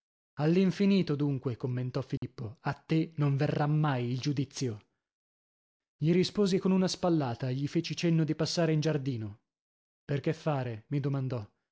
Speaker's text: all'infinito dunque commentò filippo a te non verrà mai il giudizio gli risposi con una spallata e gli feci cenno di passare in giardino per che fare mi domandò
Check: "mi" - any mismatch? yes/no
no